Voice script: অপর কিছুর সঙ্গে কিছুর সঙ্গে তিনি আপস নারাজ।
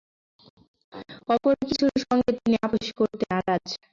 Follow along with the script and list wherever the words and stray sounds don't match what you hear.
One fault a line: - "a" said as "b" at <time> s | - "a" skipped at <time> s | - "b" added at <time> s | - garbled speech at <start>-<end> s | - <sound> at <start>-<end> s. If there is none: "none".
- "কিছুর সঙ্গে" skipped at 2.3 s
- "করতে" added at 3.0 s